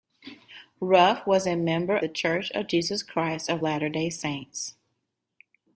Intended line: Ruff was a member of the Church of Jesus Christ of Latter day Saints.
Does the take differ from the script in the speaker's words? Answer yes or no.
yes